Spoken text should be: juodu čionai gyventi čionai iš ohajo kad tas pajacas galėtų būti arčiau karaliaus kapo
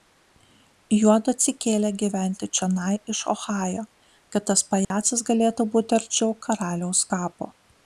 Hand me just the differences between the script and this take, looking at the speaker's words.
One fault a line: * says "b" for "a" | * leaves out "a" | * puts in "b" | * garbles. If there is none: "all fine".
* says "atsikėlė" for "čionai"